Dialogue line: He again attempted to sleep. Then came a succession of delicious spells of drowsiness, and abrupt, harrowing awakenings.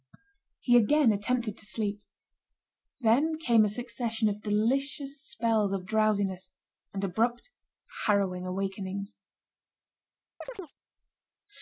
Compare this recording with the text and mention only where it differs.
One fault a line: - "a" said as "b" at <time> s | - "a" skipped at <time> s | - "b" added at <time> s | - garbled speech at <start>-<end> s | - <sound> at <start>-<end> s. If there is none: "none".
- chirp at 10.4-10.8 s